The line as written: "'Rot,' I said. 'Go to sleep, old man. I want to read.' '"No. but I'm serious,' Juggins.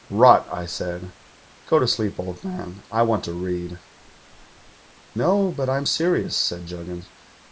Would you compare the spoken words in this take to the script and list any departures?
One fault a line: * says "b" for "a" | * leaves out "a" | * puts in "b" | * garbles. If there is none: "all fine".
* puts in "said"